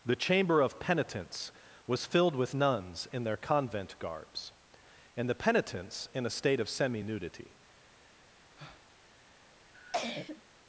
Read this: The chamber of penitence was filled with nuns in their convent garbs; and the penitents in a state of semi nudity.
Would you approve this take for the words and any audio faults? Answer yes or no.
no